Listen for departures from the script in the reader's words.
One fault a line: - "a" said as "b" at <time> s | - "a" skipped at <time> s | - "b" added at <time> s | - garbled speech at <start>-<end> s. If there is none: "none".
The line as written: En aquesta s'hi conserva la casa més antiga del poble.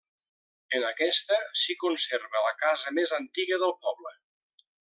none